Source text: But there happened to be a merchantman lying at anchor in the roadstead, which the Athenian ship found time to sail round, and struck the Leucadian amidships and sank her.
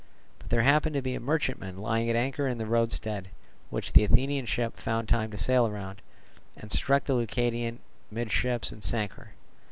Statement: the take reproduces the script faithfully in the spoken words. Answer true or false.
true